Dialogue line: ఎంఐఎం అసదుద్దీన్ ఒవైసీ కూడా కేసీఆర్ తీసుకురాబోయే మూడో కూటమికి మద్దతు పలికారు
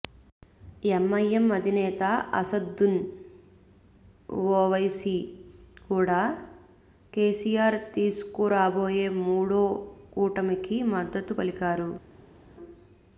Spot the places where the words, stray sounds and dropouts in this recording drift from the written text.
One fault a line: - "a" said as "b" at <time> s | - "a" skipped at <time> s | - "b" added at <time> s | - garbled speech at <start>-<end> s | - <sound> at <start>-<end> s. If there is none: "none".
- "అధినేత" added at 1.6 s